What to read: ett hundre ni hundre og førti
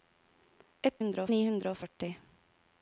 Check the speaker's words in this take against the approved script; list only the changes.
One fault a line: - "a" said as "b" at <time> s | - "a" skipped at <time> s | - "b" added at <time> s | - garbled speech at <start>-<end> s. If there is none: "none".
none